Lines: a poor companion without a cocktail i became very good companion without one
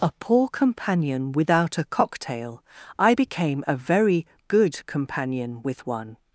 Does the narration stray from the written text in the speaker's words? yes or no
yes